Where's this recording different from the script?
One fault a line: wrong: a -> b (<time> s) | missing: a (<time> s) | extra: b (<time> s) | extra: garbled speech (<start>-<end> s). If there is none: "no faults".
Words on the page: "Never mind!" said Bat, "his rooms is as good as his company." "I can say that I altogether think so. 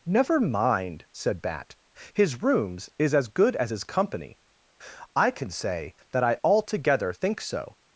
no faults